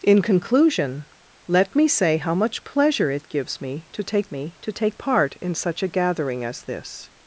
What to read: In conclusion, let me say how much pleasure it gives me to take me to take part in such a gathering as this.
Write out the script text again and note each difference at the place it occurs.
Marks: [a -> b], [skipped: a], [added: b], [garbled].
In conclusion, let me say how much pleasure it gives me to take me to take part in such a gathering as this.